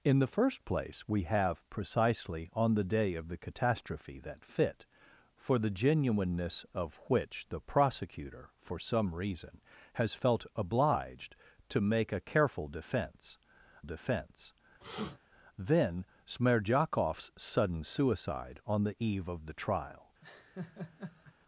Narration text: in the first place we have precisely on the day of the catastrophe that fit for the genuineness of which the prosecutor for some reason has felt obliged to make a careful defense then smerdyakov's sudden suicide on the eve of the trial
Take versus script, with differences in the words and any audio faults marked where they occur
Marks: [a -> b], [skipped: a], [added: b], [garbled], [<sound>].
in the first place we have precisely on the day of the catastrophe that fit for the genuineness of which the prosecutor for some reason has felt obliged to make a careful defense [added: defense] [sniff] then smerdyakov's sudden suicide on the eve of the trial [laugh]